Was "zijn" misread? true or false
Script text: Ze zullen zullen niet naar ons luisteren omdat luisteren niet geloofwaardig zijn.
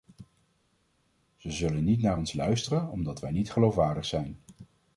false